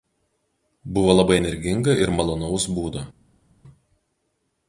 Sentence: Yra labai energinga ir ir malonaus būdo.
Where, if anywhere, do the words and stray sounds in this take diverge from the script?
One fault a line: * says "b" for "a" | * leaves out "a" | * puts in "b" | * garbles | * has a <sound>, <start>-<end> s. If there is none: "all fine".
* says "Buvo" for "Yra"
* leaves out "ir"